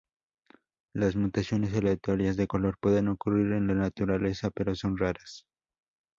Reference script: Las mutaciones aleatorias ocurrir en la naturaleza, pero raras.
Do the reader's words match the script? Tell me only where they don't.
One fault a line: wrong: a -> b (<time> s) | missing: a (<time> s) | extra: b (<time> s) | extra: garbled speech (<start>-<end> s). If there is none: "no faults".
extra: de color pueden (2.4 s)
extra: son (4.7 s)